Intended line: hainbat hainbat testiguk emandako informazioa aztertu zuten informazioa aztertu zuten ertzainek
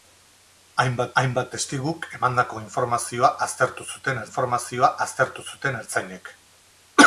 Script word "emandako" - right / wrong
right